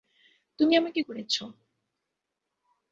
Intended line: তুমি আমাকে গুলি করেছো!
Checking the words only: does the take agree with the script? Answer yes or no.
no